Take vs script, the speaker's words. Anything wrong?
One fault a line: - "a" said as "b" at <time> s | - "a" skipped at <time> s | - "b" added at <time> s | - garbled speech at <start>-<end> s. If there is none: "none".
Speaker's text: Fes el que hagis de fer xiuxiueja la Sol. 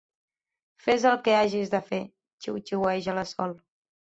none